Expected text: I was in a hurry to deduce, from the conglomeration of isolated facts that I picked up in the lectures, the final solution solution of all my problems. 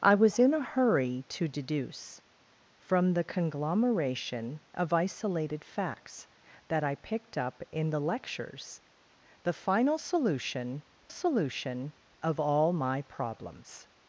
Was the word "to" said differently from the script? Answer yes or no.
no